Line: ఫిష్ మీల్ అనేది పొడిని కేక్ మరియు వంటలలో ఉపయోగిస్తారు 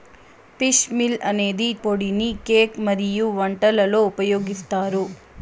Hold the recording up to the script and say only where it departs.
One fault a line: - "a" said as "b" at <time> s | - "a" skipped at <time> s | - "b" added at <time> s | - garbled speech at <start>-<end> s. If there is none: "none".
none